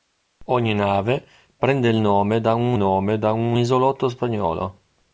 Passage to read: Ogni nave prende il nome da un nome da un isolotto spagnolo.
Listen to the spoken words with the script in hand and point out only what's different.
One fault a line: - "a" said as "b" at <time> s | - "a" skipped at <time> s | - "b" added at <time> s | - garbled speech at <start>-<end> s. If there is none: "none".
none